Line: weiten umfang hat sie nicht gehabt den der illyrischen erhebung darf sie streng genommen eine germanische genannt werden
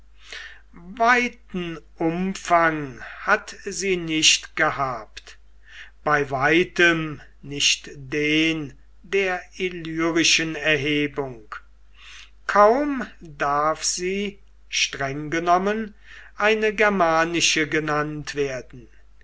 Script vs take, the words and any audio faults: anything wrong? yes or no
yes